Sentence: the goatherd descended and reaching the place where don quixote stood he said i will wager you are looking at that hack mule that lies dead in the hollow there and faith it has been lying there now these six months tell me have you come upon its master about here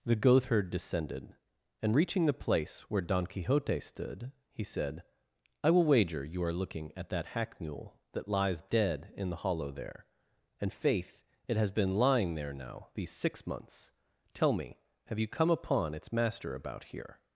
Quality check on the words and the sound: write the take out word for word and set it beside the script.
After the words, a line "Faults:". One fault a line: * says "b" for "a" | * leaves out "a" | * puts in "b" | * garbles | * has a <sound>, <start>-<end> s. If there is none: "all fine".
the goatherd descended and reaching the place where don quixote stood he said i will wager you are looking at that hack mule that lies dead in the hollow there and faith it has been lying there now these six months tell me have you come upon its master about here
Faults:
all fine